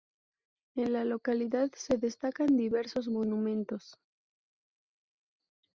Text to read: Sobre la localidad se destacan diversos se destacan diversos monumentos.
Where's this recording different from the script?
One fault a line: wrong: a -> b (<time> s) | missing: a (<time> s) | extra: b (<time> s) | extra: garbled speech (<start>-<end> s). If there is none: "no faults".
wrong: Sobre -> En (0.8 s)
missing: se destacan diversos (3.1 s)